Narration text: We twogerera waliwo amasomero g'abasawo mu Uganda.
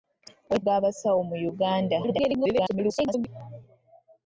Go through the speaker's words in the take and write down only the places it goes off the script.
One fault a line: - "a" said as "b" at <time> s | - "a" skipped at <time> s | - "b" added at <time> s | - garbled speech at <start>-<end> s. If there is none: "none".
- "twogerera waliwo amasomero" skipped at 0.6 s
- garbled speech at 2.0-3.3 s